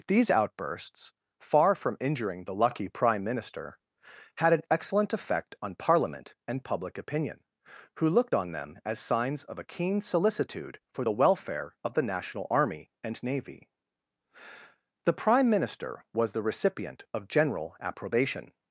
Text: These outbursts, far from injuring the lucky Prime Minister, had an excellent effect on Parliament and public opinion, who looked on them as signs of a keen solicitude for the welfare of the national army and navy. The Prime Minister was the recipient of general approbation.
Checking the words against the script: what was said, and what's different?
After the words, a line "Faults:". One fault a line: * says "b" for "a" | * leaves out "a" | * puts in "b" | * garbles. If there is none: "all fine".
These outbursts, far from injuring the lucky Prime Minister, had an excellent effect on Parliament and public opinion, who looked on them as signs of a keen solicitude for the welfare of the national army and navy. The Prime Minister was the recipient of general approbation.
Faults:
all fine